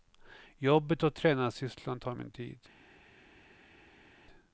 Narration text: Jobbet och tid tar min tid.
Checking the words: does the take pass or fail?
fail